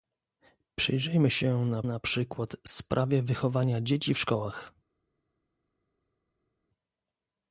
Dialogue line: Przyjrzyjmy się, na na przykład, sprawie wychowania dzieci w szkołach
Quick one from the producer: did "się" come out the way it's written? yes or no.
yes